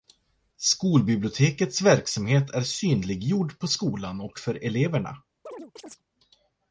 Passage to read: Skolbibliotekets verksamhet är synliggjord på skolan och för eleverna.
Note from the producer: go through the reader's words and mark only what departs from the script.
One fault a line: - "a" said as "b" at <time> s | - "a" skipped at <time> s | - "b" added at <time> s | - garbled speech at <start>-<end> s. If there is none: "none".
none